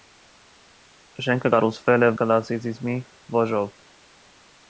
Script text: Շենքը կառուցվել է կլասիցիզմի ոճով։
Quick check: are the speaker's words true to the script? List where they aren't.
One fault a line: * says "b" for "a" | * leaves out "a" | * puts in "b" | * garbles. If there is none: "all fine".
all fine